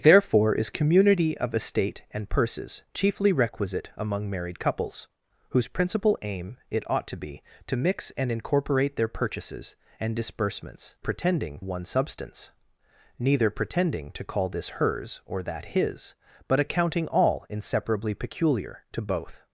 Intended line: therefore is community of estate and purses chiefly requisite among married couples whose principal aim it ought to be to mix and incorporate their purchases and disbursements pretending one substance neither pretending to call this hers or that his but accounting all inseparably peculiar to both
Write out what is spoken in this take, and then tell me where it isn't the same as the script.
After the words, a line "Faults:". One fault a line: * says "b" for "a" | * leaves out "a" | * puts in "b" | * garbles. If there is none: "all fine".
therefore is community of estate and purses chiefly requisite among married couples whose principal aim it ought to be to mix and incorporate their purchases and disbursements pretending one substance neither pretending to call this hers or that his but accounting all inseparably peculiar to both
Faults:
all fine